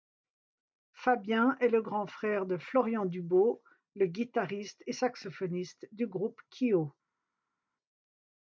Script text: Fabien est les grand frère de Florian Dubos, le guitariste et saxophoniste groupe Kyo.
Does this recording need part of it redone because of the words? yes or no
yes